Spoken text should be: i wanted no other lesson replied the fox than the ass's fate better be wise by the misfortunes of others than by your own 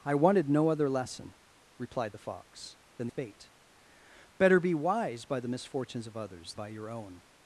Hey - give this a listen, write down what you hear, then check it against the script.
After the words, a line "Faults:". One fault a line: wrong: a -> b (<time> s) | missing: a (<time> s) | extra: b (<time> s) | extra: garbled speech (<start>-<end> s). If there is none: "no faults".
i wanted no other lesson replied the fox than fate better be wise by the misfortunes of others by your own
Faults:
missing: the ass's (3.1 s)
missing: than (6.5 s)